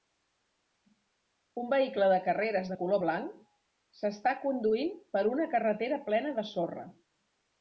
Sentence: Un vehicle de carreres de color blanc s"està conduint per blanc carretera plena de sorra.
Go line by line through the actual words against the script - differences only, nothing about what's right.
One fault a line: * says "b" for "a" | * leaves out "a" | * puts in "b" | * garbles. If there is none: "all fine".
* says "una" for "blanc"